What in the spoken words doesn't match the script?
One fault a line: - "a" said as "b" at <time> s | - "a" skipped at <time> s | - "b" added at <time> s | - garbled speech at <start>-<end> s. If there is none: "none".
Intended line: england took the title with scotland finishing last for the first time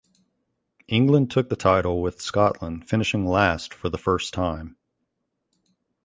none